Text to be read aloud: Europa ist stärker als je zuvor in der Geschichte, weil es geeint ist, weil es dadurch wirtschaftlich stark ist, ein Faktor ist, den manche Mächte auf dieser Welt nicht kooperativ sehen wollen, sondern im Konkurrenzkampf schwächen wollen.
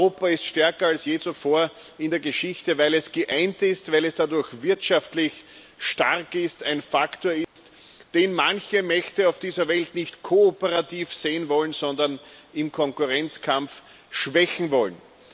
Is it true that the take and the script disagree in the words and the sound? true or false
true